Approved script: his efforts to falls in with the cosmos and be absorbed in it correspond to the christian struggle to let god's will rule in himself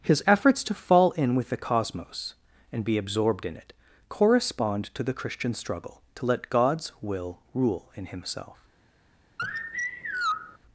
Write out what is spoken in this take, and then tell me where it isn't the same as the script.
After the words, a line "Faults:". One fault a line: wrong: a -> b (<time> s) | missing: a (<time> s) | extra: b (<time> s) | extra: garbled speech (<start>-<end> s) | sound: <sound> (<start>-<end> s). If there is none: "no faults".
his efforts to fall in with the cosmos and be absorbed in it correspond to the christian struggle to let god's will rule in himself
Faults:
wrong: falls -> fall (0.7 s)
sound: sigh (9.4-10.6 s)